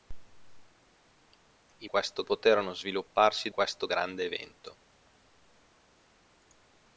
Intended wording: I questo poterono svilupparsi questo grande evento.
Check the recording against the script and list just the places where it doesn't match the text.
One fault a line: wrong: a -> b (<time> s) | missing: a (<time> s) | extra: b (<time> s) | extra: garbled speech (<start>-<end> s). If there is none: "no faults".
no faults